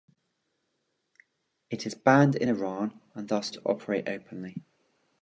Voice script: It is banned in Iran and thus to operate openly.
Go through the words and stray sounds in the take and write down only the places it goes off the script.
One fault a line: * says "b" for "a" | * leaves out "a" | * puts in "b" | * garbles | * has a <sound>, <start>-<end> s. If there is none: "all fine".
all fine